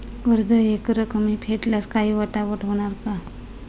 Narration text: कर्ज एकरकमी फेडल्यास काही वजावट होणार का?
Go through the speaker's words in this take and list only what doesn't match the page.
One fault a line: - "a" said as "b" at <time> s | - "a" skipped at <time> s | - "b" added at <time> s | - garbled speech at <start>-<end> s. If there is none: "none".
none